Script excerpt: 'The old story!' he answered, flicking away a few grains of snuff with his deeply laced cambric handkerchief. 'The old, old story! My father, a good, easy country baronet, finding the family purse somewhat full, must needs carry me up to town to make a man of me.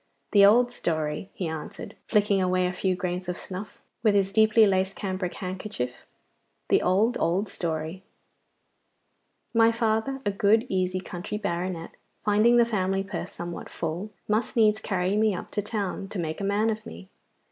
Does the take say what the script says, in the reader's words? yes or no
yes